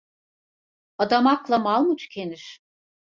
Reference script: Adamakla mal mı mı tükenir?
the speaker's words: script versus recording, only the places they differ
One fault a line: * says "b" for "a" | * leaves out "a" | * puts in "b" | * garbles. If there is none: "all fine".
* leaves out "mı"